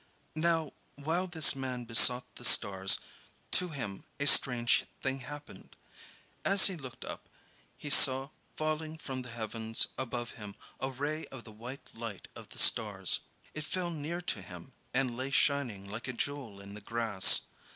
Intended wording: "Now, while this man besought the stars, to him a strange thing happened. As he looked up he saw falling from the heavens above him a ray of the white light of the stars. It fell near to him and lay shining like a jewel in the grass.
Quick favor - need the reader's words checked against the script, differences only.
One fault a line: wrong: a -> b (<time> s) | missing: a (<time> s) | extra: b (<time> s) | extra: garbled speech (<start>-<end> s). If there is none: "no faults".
no faults